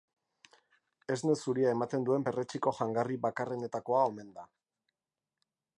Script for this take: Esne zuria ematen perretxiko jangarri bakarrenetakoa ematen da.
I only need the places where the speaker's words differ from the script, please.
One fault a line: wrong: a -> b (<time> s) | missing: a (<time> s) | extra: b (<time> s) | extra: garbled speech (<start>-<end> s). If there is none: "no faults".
extra: duen (2.1 s)
wrong: ematen -> omen (4.1 s)